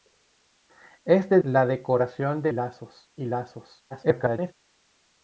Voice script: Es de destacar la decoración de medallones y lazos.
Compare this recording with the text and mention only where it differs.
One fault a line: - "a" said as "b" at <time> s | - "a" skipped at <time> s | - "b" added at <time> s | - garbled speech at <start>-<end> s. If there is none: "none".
- "destacar" skipped at 1.4 s
- "medallones" said as "lazos" at 2.5 s
- garbled speech at 3.9-4.5 s